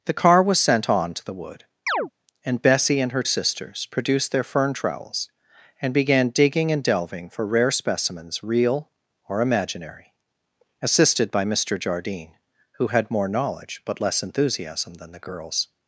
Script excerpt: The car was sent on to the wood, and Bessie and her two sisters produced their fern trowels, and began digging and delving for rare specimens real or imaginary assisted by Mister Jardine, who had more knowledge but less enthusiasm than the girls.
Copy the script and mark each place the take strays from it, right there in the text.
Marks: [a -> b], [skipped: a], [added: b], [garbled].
The car was sent on to the wood, and Bessie and her [skipped: two] sisters produced their fern trowels, and began digging and delving for rare specimens real or imaginary assisted by Mister Jardine, who had more knowledge but less enthusiasm than the girls.